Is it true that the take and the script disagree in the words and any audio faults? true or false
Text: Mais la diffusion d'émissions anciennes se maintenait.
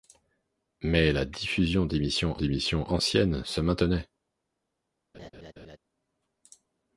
true